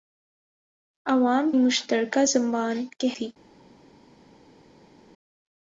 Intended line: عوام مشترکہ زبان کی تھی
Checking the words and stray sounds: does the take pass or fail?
pass